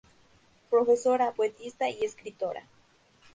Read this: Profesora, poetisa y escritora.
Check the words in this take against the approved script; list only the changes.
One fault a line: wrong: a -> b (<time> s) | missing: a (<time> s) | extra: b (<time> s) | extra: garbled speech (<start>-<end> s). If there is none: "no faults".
no faults